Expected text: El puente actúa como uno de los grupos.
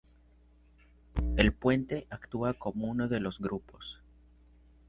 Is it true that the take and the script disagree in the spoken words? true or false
false